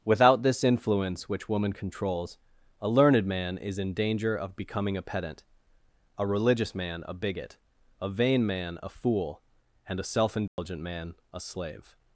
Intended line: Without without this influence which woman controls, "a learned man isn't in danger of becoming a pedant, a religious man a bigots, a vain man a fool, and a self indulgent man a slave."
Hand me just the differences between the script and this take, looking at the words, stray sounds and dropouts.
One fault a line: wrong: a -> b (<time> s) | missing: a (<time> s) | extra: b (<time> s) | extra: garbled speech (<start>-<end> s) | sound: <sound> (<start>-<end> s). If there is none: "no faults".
missing: without (0.4 s)
wrong: isn't -> is (3.6 s)
wrong: bigots -> bigot (7.1 s)
sound: dropout (10.5-10.6 s)